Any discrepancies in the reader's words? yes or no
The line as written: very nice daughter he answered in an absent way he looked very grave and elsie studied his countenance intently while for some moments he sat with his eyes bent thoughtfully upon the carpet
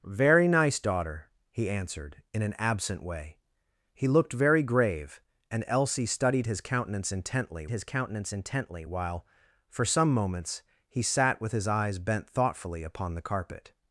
yes